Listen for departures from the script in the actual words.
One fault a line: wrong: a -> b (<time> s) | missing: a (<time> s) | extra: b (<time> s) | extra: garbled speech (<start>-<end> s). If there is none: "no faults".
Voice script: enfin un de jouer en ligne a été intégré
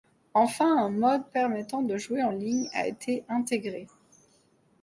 extra: mode permettant (0.9 s)